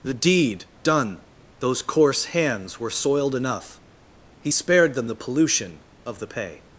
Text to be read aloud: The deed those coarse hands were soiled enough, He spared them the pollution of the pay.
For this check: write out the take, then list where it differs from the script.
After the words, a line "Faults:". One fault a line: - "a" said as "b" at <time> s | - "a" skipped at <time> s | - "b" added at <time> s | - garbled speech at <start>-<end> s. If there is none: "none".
The deed done, those coarse hands were soiled enough, He spared them the pollution of the pay.
Faults:
- "done" added at 0.8 s